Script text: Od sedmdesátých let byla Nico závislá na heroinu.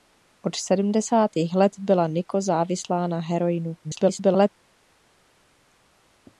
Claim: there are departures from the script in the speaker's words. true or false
true